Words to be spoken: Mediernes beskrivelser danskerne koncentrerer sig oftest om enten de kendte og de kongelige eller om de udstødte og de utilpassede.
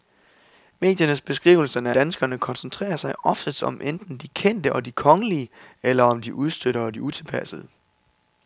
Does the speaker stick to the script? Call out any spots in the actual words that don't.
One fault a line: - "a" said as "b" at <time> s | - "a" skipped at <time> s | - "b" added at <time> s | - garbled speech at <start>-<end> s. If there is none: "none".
none